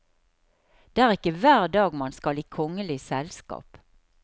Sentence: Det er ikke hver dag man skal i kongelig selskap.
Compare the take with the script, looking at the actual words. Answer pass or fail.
pass